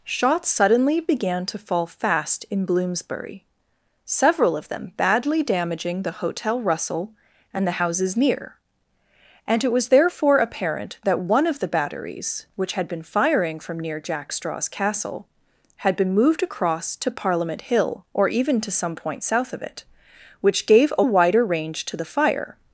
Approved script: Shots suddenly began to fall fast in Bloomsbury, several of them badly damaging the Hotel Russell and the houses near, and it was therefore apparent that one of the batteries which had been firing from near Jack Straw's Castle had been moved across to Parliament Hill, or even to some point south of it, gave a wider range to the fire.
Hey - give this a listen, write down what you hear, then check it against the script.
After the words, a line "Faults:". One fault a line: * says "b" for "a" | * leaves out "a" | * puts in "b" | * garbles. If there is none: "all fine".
Shots suddenly began to fall fast in Bloomsbury, several of them badly damaging the Hotel Russell and the houses near, and it was therefore apparent that one of the batteries which had been firing from near Jack Straw's Castle had been moved across to Parliament Hill, or even to some point south of it, which gave a wider range to the fire.
Faults:
* puts in "which"